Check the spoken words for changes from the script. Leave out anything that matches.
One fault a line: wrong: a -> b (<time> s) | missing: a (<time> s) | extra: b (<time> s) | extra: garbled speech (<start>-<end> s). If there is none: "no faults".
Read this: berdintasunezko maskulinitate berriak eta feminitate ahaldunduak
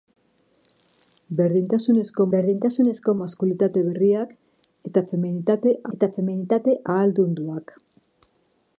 extra: berdintasunezko (2.3 s)
extra: eta feminitate (6.0 s)